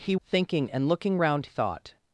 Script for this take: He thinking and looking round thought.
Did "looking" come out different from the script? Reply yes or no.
no